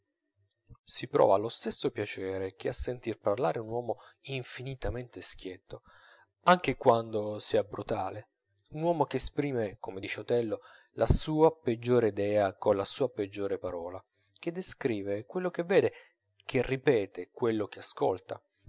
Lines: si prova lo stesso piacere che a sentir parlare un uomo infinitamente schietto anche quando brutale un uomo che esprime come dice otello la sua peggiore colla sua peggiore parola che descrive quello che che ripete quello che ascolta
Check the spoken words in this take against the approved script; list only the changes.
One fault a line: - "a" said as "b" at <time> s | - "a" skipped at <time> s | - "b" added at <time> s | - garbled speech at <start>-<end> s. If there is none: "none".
- "sia" added at 7.4 s
- "idea" added at 12.1 s
- "vede" added at 15.6 s